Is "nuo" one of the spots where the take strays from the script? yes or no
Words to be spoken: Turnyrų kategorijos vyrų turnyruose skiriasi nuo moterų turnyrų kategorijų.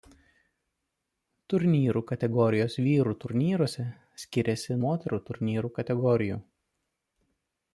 yes